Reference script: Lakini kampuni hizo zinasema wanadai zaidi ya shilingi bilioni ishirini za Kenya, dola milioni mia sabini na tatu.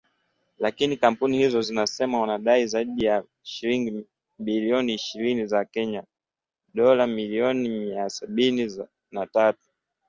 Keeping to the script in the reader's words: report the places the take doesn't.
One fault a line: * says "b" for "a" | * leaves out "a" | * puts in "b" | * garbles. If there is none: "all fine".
all fine